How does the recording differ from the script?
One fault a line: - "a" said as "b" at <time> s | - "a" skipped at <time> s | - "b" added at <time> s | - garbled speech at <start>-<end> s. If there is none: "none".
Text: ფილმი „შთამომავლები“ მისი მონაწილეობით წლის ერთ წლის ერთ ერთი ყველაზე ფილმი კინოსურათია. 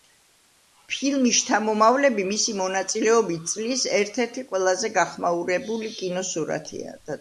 - "წლის ერთ" skipped at 4.2 s
- "ფილმი" said as "გახმაურებული" at 5.0 s